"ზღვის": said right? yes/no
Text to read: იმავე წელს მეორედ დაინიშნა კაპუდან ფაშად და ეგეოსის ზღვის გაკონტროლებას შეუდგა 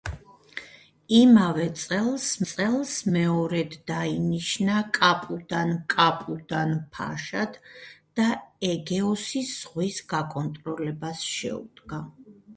yes